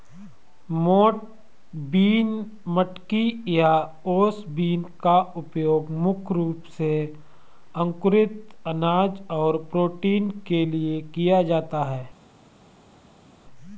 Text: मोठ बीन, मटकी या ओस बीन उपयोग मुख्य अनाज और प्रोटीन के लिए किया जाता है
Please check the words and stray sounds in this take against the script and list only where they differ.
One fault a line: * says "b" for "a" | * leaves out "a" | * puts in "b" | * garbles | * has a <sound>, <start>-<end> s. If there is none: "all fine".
* puts in "का"
* puts in "रूप से अंकुरित"